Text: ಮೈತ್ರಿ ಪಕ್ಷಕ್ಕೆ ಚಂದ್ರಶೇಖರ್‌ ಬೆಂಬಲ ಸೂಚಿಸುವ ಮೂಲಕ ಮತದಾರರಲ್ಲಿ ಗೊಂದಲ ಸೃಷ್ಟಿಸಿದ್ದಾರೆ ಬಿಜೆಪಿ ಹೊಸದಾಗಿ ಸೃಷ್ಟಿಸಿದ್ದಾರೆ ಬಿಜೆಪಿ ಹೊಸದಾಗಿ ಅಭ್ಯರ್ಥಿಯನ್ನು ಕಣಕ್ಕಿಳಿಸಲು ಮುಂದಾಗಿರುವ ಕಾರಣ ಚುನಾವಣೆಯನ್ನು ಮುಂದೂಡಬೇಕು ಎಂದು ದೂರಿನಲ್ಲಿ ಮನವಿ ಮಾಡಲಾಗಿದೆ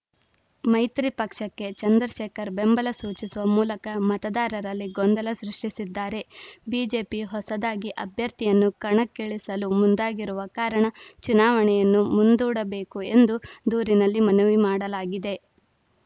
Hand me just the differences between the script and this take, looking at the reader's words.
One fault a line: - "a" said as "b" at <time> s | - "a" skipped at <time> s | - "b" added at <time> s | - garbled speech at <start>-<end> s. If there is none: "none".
- "ಸೃಷ್ಟಿಸಿದ್ದಾರೆ ಬಿಜೆಪಿ ಹೊಸದಾಗಿ" skipped at 7.9 s